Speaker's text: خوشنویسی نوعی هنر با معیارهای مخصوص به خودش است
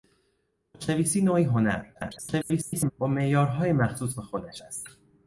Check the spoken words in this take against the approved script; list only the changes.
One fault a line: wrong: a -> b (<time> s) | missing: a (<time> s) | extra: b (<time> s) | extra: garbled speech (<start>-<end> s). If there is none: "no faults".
extra: garbled speech (1.9-2.9 s)